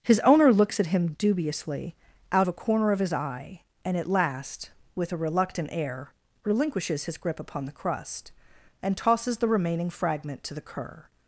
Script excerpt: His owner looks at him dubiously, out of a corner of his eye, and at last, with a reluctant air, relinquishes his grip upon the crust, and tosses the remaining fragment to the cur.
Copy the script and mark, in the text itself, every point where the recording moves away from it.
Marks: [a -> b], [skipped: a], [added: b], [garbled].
His owner looks at him dubiously, out [skipped: of] a corner of his eye, and at last, with a reluctant air, relinquishes his grip upon the crust, and tosses the remaining fragment to the cur.